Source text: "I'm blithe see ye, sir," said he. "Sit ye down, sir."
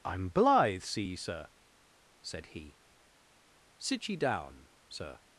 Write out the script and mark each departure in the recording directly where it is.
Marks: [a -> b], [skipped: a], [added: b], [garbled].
"I'm blithe see ye, sir," said he. "Sit ye down, sir."